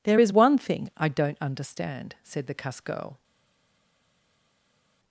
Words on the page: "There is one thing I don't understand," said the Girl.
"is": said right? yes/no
yes